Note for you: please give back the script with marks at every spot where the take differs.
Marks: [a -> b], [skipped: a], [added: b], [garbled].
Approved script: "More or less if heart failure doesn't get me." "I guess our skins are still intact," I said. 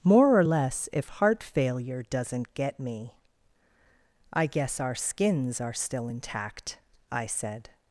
"More or less if heart failure doesn't get me." "I guess our skins are still intact," I said.